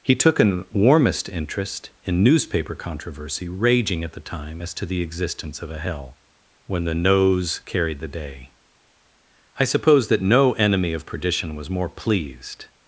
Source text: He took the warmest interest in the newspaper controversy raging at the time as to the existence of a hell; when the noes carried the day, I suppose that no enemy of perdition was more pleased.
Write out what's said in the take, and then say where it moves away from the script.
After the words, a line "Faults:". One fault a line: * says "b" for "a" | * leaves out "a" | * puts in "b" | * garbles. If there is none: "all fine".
He took an warmest interest in newspaper controversy raging at the time as to the existence of a hell; when the noes carried the day, I suppose that no enemy of perdition was more pleased.
Faults:
* says "an" for "the"
* leaves out "the"